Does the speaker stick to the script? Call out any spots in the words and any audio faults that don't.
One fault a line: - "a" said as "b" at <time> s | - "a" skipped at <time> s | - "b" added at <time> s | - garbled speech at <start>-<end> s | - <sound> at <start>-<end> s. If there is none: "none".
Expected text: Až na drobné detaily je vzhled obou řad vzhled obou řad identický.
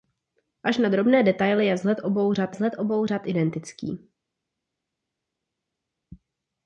none